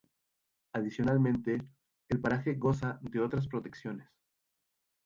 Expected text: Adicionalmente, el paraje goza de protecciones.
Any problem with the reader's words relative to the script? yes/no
yes